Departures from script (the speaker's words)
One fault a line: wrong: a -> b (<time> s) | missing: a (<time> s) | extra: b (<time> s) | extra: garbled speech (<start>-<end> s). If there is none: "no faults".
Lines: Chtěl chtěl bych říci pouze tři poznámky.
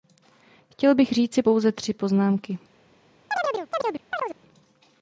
missing: chtěl (0.9 s)